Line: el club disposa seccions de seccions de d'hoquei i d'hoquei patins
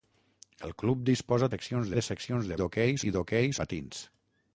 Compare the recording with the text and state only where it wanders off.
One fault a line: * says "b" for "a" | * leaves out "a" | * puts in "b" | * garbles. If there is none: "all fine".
all fine